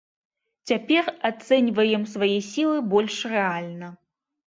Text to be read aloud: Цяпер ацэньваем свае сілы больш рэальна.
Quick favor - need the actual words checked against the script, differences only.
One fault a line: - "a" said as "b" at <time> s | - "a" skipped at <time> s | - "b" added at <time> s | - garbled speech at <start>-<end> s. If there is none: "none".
none